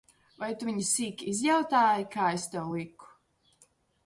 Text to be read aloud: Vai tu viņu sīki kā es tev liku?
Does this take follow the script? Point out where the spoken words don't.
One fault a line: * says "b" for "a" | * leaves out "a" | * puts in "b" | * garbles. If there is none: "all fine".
* puts in "izjautāji"